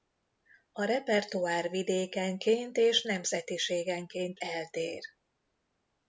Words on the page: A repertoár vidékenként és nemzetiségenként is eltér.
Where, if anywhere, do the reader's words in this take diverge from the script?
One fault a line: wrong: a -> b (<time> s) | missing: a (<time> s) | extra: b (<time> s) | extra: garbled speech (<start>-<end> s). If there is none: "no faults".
missing: is (4.4 s)